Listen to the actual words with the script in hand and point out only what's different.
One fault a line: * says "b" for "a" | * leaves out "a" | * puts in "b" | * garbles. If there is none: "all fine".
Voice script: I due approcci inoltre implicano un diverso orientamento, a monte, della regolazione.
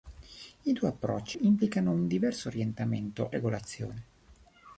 * leaves out "inoltre"
* leaves out "a monte della"